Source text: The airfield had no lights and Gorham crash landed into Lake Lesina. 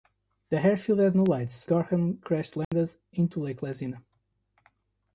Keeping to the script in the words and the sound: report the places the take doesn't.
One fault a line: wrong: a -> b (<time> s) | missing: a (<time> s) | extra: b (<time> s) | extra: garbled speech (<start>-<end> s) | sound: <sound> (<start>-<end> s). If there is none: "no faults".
missing: and (1.7 s)
sound: dropout (2.6-2.7 s)